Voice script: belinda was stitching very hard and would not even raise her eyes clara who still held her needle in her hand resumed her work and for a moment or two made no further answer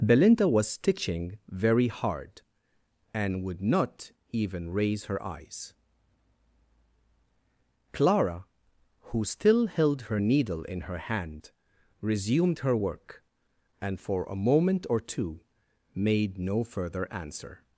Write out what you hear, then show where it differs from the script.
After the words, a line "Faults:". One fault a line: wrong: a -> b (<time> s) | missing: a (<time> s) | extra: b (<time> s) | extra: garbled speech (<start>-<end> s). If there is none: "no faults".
belinda was stitching very hard and would not even raise her eyes clara who still held her needle in her hand resumed her work and for a moment or two made no further answer
Faults:
no faults